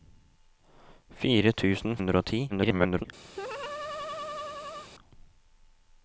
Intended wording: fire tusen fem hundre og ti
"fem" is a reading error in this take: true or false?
true